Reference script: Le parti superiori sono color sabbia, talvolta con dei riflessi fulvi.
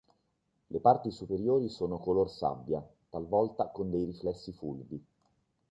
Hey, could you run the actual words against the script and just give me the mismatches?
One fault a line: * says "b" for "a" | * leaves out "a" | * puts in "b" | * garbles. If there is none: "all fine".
all fine